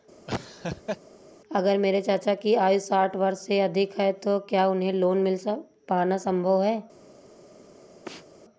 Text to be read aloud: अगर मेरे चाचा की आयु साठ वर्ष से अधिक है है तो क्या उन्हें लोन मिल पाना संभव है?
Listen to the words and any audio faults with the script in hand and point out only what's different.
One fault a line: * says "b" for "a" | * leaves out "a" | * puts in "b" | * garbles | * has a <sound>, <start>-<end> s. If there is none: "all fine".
* has a laugh, 0.3-1.0 s
* leaves out "है"
* has a sneeze, 8.1-8.3 s